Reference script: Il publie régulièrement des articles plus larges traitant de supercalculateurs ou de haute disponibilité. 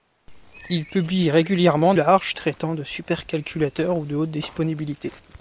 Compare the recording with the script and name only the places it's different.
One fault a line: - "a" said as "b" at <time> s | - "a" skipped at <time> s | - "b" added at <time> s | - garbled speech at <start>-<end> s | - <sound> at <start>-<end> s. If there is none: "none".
- "des articles plus" skipped at 1.9 s